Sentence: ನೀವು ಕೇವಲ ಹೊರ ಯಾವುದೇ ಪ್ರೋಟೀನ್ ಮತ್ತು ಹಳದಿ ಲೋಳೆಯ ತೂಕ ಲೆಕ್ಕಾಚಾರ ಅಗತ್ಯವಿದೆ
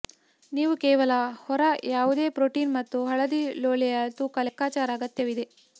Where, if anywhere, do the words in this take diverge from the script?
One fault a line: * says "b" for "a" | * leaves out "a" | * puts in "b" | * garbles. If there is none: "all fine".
all fine